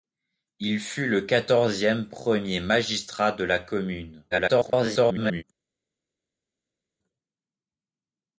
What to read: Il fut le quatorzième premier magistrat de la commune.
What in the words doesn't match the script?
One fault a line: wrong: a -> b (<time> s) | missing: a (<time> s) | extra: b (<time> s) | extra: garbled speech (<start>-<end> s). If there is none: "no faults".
extra: garbled speech (4.3-5.4 s)